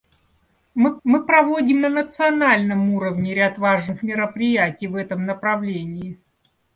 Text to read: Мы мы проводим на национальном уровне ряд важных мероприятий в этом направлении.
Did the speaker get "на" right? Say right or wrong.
right